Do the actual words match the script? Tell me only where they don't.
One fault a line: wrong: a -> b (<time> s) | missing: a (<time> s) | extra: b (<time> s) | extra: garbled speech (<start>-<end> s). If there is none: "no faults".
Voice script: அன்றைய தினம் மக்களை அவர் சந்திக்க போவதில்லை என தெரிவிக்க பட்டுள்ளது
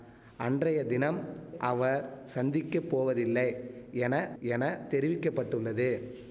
missing: மக்களை (1.2 s)
extra: என (4.4 s)